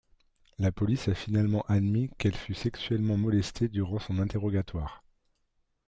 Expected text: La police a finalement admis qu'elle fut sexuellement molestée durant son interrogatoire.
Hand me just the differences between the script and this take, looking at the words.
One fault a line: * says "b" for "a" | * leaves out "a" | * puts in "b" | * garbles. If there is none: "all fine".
all fine